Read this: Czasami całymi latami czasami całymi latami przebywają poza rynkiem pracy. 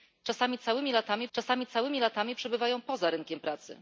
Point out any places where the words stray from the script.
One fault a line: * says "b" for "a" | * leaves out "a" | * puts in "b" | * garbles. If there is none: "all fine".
all fine